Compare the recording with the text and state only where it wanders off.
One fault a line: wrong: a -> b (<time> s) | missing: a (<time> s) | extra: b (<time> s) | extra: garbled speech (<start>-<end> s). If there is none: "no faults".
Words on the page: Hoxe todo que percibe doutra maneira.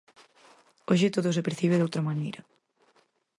wrong: que -> se (1.4 s)